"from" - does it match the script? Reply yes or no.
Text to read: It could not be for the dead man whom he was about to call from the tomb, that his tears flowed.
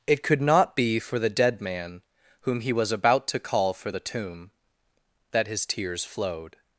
no